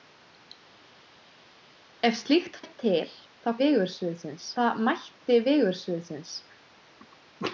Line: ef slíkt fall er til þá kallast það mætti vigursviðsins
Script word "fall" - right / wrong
wrong